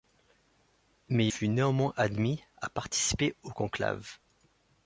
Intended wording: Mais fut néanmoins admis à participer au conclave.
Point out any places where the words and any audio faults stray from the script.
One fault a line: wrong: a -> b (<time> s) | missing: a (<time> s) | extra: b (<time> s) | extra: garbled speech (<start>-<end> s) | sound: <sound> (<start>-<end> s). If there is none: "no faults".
no faults